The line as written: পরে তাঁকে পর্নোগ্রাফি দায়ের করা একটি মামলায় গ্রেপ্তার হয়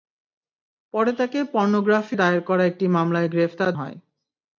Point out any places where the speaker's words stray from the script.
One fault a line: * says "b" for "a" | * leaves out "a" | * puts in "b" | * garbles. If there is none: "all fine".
all fine